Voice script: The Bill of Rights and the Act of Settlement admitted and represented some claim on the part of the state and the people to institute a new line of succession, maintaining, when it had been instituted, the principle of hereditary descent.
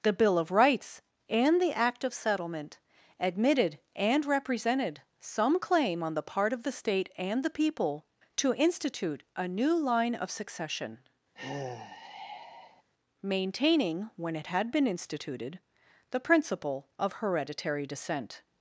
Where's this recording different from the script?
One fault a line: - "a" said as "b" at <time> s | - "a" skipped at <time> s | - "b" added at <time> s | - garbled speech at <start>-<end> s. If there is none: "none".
none